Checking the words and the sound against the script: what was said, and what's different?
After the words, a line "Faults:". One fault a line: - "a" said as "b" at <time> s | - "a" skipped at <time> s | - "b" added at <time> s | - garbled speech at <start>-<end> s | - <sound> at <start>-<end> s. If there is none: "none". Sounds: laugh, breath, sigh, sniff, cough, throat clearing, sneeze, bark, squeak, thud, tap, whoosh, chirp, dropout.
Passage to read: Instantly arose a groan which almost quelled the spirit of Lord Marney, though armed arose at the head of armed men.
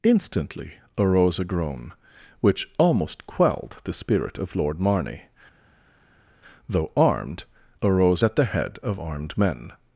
Instantly arose a groan which almost quelled the spirit of Lord Marney, though armed arose at the head of armed men.
Faults:
none